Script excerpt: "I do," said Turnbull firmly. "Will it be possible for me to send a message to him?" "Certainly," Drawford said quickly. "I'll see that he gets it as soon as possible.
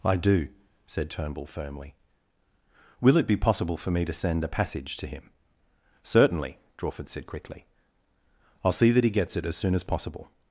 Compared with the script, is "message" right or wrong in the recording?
wrong